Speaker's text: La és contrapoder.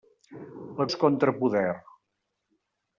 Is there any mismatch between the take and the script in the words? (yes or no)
no